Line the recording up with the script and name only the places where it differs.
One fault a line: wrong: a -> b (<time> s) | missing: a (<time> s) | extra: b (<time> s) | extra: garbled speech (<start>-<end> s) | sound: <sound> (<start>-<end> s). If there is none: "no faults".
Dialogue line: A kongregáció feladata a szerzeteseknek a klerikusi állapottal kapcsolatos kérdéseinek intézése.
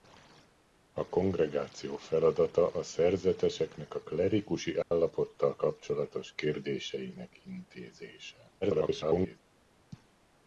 sound: dropout (4.8-4.9 s)
extra: garbled speech (8.6-9.4 s)